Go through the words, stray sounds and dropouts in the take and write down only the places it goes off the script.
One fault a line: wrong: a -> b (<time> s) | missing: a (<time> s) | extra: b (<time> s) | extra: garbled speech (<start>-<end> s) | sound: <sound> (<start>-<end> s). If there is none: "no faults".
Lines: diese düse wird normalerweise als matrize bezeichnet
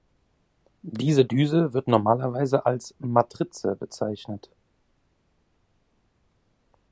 no faults